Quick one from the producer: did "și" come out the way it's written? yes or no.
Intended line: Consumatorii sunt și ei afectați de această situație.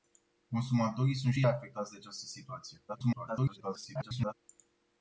no